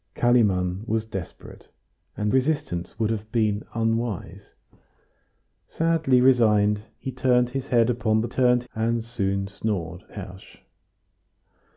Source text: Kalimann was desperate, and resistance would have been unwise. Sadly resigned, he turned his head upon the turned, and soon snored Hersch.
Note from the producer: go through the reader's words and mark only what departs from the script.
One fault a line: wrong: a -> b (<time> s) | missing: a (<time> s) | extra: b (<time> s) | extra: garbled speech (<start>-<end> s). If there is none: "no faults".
no faults